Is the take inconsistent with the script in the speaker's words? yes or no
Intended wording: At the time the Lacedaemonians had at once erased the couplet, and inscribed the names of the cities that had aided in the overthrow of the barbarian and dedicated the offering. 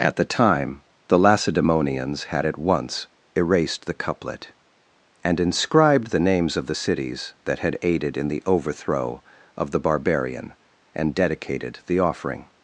no